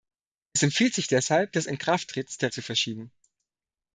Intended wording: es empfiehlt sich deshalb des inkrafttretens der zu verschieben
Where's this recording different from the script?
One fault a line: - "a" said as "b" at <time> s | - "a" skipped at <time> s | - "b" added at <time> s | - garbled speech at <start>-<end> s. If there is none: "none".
none